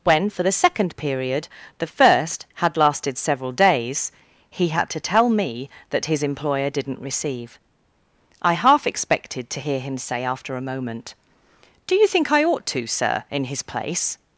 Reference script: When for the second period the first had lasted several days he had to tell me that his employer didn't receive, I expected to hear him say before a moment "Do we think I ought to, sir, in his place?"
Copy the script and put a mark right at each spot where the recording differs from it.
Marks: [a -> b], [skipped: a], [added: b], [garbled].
When for the second period the first had lasted several days he had to tell me that his employer didn't receive, I [added: half] expected to hear him say [before -> after] a moment "Do [we -> you] think I ought to, sir, in his place?"